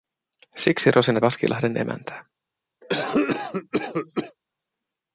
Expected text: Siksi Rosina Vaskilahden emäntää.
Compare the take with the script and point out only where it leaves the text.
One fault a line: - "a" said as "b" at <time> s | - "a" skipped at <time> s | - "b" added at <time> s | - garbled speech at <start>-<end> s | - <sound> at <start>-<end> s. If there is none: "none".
- cough at 2.8-4.4 s